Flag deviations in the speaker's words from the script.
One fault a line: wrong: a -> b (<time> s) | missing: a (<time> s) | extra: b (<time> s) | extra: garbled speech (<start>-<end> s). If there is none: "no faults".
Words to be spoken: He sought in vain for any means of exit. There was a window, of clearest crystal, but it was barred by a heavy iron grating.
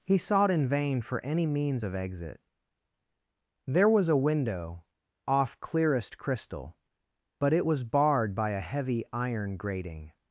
wrong: of -> off (5.3 s)